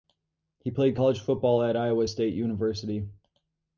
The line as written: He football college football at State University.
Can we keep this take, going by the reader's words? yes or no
no